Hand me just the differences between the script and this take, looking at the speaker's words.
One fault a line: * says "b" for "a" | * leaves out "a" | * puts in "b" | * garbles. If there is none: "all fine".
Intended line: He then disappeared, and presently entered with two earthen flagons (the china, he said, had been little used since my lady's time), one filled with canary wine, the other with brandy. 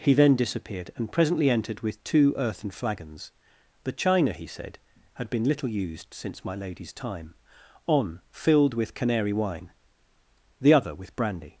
* says "on" for "one"